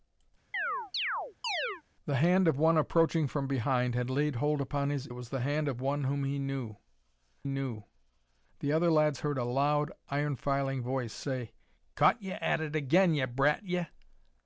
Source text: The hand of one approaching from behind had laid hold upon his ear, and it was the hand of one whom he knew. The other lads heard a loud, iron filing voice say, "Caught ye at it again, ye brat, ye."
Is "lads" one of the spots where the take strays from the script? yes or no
no